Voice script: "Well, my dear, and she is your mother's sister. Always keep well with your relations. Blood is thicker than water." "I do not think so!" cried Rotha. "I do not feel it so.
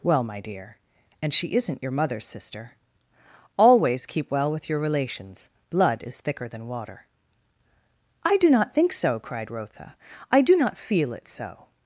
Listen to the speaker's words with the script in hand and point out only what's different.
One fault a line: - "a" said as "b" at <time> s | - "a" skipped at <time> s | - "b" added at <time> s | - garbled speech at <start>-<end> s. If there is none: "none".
- "is" said as "isn't" at 1.6 s